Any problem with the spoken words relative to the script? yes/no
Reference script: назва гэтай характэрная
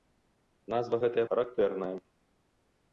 no